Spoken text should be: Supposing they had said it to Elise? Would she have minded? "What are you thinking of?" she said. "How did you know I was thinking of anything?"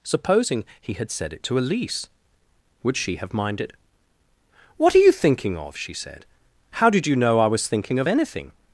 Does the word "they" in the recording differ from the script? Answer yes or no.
yes